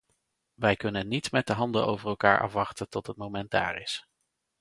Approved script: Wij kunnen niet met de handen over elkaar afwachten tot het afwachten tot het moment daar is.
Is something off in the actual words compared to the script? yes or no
yes